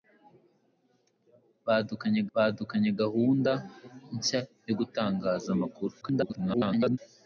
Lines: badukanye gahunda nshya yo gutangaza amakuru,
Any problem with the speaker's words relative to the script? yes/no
yes